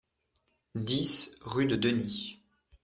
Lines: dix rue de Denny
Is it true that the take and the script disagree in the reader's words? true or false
false